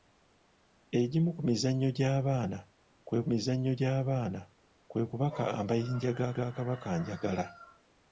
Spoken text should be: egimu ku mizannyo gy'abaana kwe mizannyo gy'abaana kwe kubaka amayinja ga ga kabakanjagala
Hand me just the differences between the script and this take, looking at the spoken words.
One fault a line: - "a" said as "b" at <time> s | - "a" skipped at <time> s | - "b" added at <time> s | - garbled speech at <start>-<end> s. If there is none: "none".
none